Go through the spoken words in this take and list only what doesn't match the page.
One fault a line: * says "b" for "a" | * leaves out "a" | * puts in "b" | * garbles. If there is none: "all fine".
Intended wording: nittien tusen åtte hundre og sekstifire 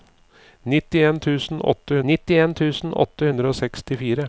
* puts in "nittien tusen åtte"